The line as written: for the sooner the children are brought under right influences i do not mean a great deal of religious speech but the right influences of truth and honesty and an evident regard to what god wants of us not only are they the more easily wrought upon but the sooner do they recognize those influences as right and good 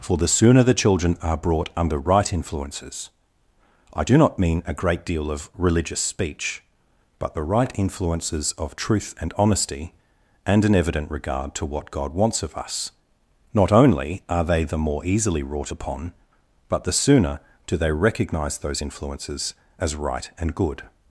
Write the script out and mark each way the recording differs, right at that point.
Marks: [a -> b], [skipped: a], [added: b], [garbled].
for the sooner the children are brought under right influences i do not mean a great deal of religious speech but the right influences of truth and honesty and an evident regard to what god wants of us not only are they the more easily wrought upon but the sooner do they recognize those influences as right and good